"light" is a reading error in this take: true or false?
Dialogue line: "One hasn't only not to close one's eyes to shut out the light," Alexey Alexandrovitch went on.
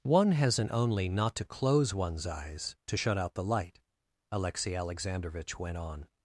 false